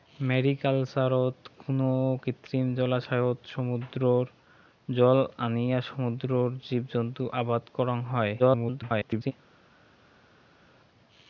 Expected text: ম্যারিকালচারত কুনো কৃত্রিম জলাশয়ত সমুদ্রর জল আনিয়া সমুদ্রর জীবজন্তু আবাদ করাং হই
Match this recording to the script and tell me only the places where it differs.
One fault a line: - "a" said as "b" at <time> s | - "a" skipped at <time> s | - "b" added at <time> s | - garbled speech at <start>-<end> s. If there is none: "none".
- garbled speech at 8.4-9.3 s